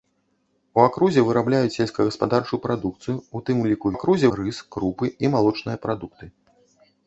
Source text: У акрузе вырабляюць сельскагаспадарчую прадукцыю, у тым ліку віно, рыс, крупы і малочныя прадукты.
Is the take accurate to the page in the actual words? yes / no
no